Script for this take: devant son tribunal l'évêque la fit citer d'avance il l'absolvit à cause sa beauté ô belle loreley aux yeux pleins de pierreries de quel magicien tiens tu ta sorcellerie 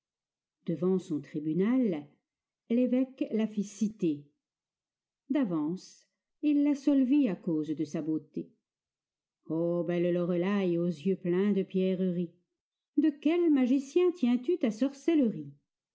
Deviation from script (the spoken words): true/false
true